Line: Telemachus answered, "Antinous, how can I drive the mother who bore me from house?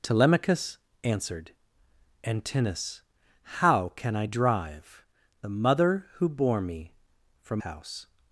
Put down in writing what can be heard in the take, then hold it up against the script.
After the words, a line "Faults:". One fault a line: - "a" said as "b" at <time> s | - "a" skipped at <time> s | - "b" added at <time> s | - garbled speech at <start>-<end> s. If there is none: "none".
Telemachus answered, "Antinous, how can I drive the mother who bore me from house?
Faults:
none